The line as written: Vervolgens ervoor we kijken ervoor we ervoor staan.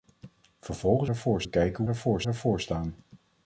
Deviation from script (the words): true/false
false